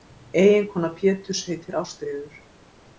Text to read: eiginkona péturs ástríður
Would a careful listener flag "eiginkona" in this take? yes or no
no